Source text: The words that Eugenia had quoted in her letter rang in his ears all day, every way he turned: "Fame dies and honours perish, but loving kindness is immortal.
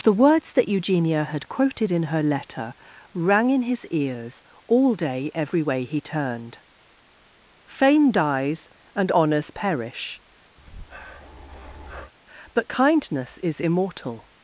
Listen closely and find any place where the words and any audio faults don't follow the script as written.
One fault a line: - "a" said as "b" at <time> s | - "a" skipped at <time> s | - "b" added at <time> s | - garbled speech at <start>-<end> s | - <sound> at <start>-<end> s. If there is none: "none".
- breath at 10.6-12.1 s
- "loving" skipped at 12.7 s